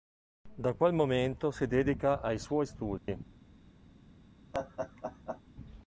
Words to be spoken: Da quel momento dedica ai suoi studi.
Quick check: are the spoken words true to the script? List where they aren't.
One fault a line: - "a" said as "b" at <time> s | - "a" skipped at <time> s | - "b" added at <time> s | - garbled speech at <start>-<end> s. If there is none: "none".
- "si" added at 1.5 s